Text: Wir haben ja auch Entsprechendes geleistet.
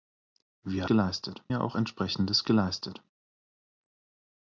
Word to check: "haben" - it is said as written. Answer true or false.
false